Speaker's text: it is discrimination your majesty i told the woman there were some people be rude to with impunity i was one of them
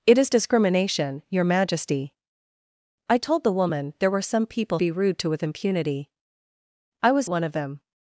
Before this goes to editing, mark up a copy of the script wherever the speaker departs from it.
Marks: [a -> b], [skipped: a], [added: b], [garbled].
it is discrimination your majesty i told the woman there were some people be rude to with impunity i was one of them